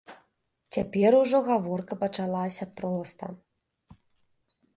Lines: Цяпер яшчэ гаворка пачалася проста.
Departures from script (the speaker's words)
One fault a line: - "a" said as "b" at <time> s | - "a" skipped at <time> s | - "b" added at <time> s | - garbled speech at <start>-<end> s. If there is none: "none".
- "яшчэ" said as "ужо" at 1.2 s